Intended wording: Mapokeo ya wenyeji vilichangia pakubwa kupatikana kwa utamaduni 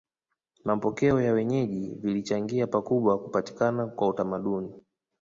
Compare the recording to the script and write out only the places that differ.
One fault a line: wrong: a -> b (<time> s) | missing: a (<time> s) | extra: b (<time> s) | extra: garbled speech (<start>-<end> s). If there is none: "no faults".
no faults